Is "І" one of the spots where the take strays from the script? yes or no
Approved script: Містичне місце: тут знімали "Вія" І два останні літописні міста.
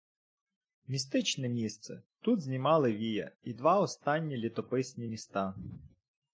no